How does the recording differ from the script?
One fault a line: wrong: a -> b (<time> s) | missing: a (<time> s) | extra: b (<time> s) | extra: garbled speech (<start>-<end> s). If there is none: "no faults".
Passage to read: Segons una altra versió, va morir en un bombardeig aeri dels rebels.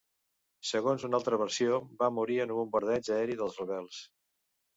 no faults